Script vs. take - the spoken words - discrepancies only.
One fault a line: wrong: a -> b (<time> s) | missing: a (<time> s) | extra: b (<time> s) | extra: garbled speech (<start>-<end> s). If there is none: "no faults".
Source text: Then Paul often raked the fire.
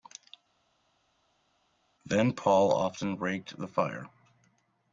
no faults